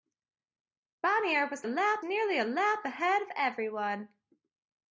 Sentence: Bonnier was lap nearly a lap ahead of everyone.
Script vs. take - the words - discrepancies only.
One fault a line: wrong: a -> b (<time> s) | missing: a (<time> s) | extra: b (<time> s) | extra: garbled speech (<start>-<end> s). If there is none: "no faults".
no faults